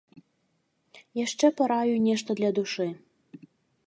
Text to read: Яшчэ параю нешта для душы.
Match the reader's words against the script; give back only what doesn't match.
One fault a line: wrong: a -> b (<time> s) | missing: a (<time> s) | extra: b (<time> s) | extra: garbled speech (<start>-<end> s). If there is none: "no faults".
no faults